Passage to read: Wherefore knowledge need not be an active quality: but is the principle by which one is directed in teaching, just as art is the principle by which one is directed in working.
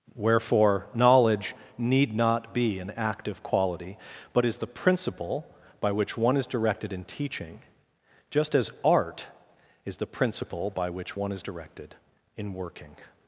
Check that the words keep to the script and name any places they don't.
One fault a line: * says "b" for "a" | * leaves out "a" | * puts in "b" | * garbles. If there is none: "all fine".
all fine